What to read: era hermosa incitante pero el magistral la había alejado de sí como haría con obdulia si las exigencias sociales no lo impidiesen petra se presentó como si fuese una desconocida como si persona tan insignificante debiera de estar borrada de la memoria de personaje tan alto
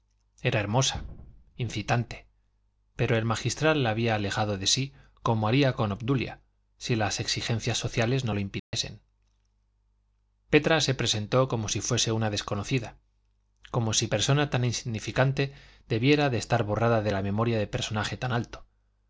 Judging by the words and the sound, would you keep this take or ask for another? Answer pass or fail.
fail